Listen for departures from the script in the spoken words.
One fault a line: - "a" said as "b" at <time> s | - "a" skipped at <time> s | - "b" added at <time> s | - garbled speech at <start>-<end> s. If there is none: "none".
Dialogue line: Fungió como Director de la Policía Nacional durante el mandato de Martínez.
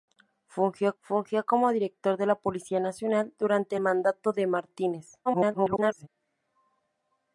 - "fungió" added at 1.0 s
- "el" skipped at 3.8 s
- garbled speech at 5.3-6.1 s